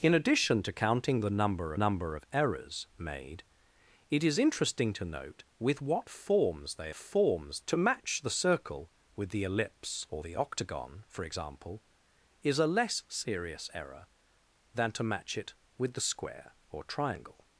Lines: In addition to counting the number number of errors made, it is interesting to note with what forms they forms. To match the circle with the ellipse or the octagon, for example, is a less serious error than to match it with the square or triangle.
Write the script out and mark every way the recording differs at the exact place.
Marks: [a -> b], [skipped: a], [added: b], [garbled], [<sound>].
In addition to counting the number number of errors made, it is interesting to note with what forms they forms. To match the circle with the ellipse or the octagon, for example, is a less serious error than to match it with the square or triangle.